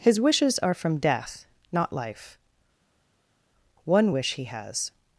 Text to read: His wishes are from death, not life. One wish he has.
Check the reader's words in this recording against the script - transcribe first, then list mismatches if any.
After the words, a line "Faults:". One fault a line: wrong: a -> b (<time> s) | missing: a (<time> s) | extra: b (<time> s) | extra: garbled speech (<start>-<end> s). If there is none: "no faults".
His wishes are from death, not life. One wish he has.
Faults:
no faults